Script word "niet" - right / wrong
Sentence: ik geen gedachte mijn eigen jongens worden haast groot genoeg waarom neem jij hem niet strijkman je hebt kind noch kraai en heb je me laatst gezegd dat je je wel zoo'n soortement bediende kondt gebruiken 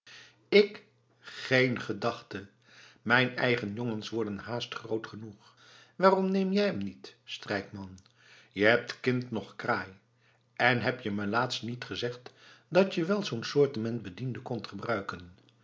right